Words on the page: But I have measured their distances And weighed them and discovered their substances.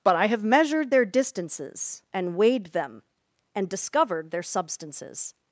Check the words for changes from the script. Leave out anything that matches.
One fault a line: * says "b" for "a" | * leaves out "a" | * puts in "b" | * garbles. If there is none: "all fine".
all fine